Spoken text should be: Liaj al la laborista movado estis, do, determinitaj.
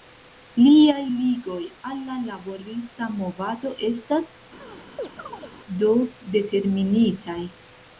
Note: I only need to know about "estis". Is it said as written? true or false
false